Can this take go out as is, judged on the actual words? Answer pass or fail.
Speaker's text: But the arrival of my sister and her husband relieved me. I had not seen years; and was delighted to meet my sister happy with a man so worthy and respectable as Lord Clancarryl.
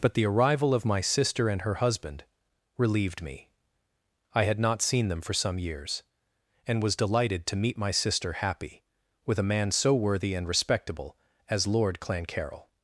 fail